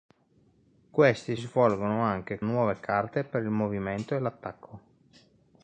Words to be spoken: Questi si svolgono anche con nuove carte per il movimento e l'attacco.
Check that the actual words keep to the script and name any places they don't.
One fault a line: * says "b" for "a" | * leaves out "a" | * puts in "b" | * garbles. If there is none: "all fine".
* leaves out "si"
* leaves out "con"